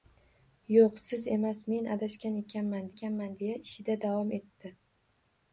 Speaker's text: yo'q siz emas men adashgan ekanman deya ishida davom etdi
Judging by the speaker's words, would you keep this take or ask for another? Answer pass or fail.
fail